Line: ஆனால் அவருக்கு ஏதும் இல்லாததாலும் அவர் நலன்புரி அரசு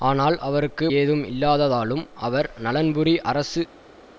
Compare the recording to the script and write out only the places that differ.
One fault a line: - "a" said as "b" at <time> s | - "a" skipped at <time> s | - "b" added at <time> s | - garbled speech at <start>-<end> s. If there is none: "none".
none